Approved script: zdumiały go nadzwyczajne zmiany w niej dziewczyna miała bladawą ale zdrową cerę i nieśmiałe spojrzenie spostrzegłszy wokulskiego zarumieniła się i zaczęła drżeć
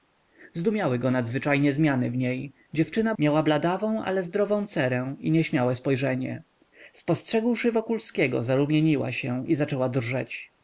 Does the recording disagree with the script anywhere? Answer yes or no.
no